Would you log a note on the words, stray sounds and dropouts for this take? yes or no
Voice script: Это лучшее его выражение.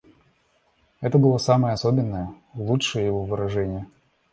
yes